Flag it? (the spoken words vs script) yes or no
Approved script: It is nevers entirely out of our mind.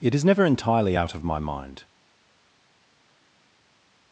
yes